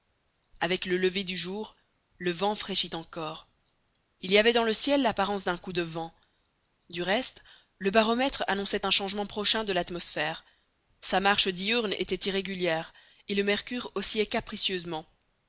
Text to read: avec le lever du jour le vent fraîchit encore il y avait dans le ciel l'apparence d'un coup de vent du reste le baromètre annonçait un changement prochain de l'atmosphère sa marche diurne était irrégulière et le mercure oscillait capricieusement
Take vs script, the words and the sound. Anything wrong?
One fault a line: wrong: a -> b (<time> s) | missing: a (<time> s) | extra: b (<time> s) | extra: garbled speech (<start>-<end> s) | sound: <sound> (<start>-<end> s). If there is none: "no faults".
no faults